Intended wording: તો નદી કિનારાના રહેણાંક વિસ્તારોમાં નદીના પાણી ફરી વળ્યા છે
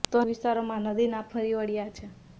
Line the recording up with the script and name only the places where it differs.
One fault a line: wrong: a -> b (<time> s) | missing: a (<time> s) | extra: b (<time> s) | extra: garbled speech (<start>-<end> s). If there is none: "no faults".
missing: નદી કિનારાના રહેણાંક (0.2 s)
missing: પાણી (1.3 s)